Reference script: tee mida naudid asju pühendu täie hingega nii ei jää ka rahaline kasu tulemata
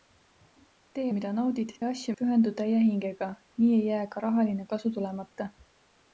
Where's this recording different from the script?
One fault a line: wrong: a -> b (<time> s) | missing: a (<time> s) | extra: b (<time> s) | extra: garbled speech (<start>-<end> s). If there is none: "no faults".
no faults